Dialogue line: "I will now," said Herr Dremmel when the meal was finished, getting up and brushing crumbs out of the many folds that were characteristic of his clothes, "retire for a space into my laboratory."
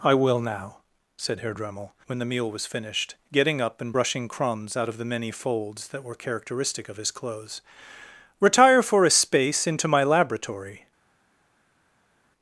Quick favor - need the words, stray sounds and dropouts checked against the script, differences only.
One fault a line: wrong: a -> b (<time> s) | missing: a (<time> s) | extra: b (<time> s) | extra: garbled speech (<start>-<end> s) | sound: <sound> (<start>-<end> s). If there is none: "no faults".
no faults